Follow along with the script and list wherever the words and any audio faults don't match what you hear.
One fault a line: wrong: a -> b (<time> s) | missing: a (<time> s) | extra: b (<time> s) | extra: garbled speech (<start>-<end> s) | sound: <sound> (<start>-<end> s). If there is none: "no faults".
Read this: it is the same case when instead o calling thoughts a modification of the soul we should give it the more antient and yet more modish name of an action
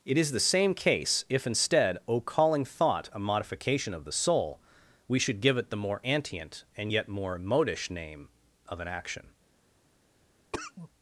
wrong: when -> if (1.3 s)
wrong: thoughts -> thought (2.6 s)
sound: cough (10.5-10.9 s)